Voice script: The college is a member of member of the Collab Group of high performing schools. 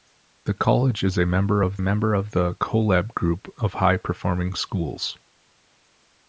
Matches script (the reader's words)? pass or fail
pass